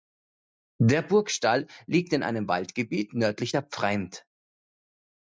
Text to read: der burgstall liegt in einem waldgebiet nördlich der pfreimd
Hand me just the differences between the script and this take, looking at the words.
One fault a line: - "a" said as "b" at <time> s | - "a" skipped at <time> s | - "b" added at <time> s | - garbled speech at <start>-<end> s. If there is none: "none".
none